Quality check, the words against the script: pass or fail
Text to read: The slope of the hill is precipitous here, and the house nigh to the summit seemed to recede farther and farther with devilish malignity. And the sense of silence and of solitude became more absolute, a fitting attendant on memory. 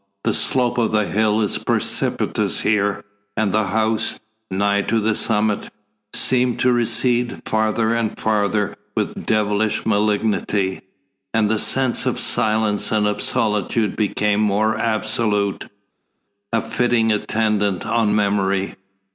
pass